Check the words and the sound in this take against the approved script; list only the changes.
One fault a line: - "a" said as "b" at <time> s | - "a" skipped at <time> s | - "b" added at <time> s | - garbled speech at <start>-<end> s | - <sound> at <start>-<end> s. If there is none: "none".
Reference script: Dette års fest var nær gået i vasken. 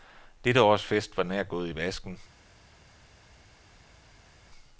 none